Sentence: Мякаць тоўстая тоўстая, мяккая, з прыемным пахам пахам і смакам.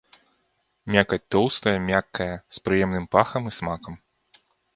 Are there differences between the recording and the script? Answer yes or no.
yes